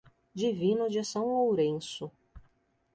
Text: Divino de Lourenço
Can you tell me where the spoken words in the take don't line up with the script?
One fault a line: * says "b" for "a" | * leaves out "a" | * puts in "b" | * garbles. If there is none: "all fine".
* puts in "São"